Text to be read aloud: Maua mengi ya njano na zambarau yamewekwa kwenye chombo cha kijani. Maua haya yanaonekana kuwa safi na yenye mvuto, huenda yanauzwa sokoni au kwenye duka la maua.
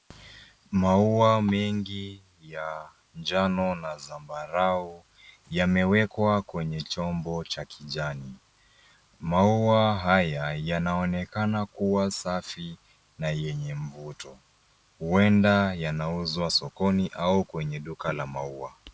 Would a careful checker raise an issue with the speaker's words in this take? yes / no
no